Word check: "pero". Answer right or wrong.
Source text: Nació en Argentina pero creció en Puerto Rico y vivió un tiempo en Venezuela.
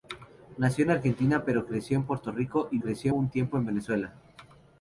right